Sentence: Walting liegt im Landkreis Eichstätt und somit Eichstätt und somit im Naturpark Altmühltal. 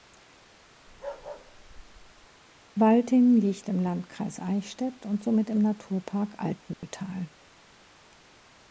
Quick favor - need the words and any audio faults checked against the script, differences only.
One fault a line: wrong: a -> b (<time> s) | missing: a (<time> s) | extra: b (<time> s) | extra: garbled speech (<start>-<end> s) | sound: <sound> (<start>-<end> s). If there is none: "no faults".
sound: bark (0.9-2.3 s)
missing: Eichstätt und somit (5.5 s)
sound: dropout (6.7-6.8 s)